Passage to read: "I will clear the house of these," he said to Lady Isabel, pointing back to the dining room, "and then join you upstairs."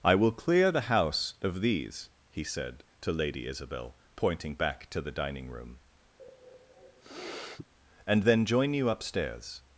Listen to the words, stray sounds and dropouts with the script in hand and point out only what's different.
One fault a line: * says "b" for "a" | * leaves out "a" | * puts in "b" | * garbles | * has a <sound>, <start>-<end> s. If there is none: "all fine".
* has a sniff, 6.2-7.7 s